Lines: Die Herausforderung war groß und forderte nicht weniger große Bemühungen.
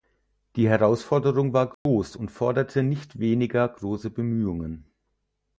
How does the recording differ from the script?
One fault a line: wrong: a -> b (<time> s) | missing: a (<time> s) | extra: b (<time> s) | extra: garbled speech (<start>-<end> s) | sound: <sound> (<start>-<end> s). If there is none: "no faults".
sound: dropout (1.7-1.9 s)